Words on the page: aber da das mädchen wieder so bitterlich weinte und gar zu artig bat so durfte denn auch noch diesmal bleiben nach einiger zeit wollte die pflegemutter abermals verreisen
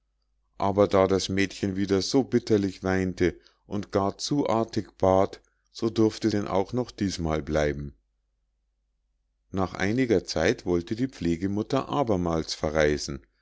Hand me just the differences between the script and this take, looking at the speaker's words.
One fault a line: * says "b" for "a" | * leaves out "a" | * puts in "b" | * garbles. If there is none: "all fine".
all fine